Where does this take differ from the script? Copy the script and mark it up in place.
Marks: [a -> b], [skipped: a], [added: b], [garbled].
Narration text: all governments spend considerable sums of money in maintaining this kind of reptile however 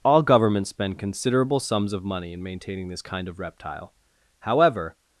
all governments spend considerable sums of money in maintaining this kind of reptile however